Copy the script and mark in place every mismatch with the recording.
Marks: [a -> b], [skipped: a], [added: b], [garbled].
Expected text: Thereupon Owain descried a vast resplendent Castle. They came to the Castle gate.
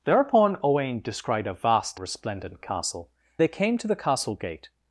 Thereupon Owain descried a vast resplendent Castle. They came to the Castle gate.